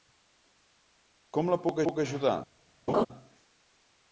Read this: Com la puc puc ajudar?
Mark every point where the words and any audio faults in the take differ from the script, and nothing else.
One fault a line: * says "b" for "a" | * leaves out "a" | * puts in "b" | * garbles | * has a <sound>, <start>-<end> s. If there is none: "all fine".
* has a laugh, 2.9-3.1 s